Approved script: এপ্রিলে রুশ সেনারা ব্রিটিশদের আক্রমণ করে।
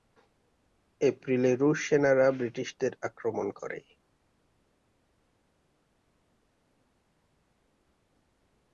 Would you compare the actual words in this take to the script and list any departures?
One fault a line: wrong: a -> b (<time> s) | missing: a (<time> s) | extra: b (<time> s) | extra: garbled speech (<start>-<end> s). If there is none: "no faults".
no faults